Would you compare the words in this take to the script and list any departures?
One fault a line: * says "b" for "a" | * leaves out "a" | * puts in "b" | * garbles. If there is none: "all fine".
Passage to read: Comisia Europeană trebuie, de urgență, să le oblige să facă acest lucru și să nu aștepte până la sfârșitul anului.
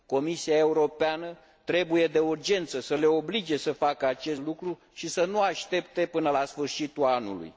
all fine